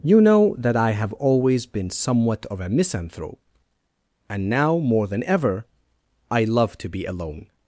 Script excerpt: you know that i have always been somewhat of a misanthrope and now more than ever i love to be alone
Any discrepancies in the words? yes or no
no